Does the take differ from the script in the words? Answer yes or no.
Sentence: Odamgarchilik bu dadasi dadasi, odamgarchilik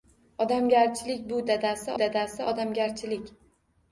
no